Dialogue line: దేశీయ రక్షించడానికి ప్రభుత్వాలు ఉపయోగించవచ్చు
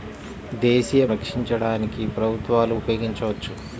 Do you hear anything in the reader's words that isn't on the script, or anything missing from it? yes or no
no